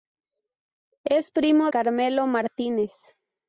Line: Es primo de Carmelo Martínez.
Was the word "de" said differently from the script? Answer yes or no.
yes